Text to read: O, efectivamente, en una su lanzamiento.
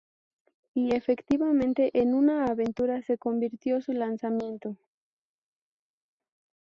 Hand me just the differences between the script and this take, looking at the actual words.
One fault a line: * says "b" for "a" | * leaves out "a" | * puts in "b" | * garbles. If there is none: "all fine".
* says "Y" for "O"
* puts in "aventura se convirtió"